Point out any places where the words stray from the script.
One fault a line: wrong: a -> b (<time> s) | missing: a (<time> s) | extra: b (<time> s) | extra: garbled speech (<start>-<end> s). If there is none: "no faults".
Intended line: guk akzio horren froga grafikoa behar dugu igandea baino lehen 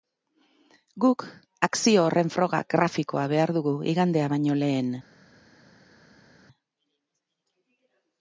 no faults